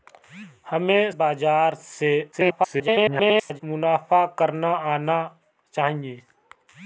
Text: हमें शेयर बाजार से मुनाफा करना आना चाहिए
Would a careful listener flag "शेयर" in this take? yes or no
yes